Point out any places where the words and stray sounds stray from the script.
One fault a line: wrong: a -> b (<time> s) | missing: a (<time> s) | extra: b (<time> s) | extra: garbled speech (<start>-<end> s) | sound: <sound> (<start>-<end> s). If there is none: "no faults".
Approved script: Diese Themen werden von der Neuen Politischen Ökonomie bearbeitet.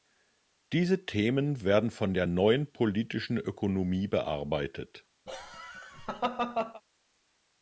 sound: laugh (5.3-6.8 s)